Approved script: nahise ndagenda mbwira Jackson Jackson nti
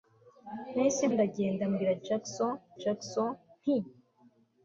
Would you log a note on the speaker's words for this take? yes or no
no